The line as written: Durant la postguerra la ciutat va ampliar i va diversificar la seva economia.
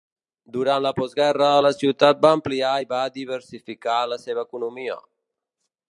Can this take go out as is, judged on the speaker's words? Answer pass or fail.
pass